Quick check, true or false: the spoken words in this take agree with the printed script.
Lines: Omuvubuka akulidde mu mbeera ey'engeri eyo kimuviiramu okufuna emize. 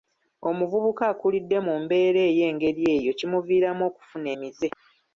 true